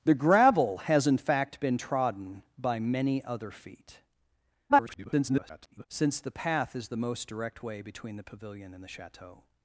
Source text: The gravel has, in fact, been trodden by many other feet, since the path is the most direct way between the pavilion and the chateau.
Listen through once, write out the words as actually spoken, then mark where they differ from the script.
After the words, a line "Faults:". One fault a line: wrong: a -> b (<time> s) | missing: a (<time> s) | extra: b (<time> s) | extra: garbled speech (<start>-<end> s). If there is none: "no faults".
The gravel has, in fact, been trodden by many other feet, [garbled] since the path is the most direct way between the pavilion and the chateau.
Faults:
extra: garbled speech (4.7-5.9 s)